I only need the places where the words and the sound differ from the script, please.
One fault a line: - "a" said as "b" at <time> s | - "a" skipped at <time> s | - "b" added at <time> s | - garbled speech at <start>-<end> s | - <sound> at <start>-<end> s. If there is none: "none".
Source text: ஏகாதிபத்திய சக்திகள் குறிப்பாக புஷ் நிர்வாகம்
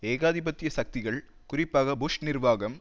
none